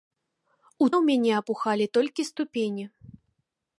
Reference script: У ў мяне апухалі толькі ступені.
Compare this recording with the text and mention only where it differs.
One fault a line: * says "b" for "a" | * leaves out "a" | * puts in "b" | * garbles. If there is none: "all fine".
all fine